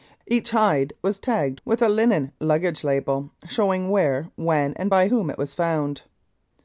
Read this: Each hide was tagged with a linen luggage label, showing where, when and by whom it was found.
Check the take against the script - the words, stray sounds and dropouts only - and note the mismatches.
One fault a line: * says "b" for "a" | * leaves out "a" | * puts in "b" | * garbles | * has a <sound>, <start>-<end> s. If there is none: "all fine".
all fine